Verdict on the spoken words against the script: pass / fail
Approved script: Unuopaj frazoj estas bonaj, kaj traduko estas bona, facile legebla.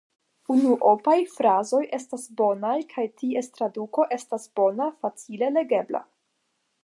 fail